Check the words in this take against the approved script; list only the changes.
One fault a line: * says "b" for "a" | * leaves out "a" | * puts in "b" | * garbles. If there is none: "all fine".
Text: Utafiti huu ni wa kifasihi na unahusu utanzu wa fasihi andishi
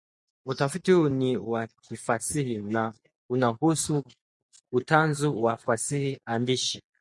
all fine